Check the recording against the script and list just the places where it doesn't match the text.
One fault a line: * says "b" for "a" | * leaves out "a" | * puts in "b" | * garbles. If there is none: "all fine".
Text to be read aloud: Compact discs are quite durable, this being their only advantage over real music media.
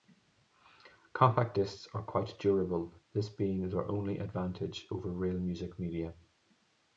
all fine